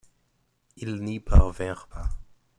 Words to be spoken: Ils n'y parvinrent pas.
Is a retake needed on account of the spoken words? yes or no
no